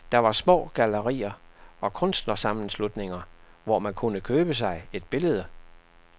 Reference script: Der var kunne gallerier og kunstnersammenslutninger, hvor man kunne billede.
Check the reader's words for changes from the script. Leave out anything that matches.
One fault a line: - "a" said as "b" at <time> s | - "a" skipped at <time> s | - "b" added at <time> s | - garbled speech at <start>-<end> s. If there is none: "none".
- "kunne" said as "små" at 0.3 s
- "købe sig et" added at 4.2 s